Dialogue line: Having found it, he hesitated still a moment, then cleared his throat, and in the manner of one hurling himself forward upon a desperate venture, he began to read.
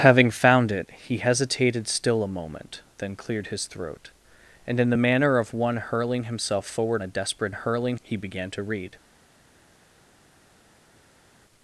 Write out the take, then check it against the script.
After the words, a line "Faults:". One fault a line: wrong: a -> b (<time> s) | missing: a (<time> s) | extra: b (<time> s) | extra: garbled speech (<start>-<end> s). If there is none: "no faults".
Having found it, he hesitated still a moment, then cleared his throat, and in the manner of one hurling himself forward a desperate hurling, he began to read.
Faults:
missing: upon (7.0 s)
wrong: venture -> hurling (7.5 s)